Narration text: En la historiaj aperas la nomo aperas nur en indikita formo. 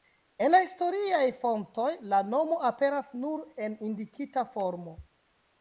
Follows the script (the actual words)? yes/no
no